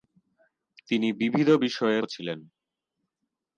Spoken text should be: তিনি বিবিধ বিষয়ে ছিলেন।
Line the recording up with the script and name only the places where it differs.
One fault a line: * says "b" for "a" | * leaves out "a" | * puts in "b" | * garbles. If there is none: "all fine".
all fine